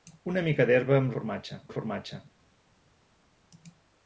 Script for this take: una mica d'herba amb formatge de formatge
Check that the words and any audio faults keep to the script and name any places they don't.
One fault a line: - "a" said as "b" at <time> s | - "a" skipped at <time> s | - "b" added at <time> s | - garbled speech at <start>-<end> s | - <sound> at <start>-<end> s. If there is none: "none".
none